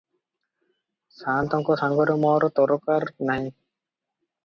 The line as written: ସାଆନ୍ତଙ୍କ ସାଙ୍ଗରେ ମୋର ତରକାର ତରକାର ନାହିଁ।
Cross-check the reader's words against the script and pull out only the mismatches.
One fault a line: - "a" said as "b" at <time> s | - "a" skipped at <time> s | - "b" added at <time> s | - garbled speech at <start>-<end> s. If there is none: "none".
- "ତରକାର" skipped at 3.1 s